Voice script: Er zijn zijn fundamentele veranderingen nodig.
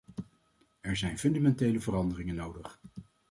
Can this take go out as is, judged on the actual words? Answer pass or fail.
fail